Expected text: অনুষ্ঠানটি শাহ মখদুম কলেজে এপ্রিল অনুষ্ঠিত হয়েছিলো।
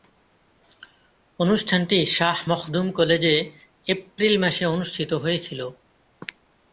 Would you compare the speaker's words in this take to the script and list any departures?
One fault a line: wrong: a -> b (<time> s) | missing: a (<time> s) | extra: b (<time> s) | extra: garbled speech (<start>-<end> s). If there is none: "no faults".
extra: মাসে (4.4 s)